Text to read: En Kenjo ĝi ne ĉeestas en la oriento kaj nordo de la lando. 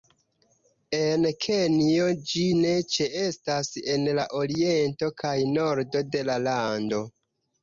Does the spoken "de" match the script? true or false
true